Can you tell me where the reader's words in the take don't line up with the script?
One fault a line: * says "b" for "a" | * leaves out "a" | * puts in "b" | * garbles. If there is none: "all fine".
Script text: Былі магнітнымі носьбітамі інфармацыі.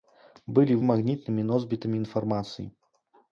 all fine